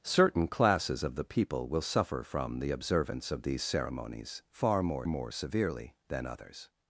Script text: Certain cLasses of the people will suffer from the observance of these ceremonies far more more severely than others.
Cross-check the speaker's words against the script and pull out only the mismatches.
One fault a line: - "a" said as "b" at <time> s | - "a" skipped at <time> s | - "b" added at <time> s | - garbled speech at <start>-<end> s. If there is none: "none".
none